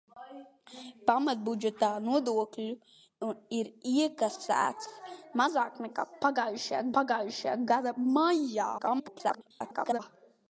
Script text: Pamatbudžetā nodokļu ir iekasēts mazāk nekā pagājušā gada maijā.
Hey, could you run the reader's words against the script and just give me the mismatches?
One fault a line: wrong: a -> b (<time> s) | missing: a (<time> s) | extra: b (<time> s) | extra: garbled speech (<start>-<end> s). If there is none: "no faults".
extra: pagājušā (7.0 s)
extra: garbled speech (8.8-10.0 s)